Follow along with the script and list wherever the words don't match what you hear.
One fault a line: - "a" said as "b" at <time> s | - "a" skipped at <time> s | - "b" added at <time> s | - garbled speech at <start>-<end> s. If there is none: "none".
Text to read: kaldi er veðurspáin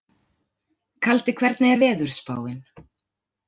- "hvernig" added at 1.4 s